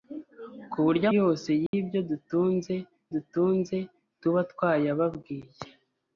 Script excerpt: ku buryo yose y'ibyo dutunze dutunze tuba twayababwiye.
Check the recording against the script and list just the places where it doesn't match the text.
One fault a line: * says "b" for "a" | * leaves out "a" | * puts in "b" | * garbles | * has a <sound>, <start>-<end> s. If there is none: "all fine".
* has a dropout, 1.7-1.7 s